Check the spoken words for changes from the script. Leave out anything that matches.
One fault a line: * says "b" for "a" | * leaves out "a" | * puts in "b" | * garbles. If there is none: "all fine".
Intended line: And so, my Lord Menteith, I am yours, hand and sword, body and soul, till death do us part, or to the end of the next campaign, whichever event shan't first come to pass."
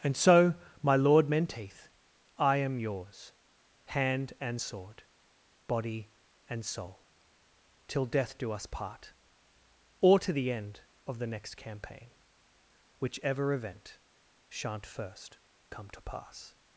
all fine